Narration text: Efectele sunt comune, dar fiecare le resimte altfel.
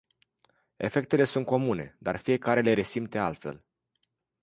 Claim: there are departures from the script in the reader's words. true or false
false